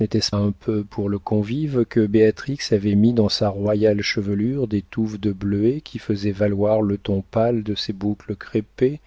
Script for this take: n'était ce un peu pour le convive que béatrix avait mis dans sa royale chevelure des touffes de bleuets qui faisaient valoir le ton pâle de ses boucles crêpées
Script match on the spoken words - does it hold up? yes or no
yes